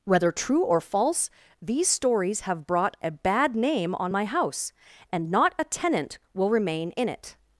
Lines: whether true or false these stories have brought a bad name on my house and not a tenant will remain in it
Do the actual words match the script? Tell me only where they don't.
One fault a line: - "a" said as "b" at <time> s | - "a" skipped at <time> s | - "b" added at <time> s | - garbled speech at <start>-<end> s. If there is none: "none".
none